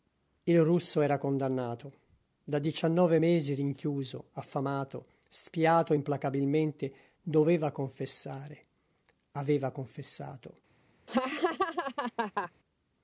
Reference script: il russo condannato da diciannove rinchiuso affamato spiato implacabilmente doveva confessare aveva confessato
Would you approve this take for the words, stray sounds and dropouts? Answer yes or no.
no